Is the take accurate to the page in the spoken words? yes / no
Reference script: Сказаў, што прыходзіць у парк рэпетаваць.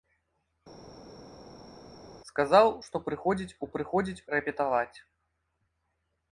no